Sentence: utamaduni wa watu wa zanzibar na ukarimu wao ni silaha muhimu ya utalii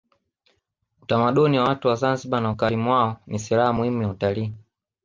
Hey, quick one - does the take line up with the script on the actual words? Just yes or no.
yes